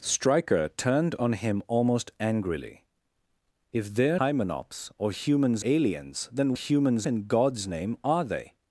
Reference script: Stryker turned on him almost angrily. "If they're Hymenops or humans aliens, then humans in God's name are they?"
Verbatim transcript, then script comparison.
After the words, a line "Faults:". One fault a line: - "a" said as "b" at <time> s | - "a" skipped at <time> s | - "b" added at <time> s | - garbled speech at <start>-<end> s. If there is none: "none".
Stryker turned on him almost angrily. "If they're Hymenops or humans aliens, then humans in God's name are they?"
Faults:
none